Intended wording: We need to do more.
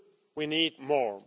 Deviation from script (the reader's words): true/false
true